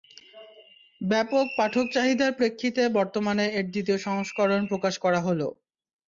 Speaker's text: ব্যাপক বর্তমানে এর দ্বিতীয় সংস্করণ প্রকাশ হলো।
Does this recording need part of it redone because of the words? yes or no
yes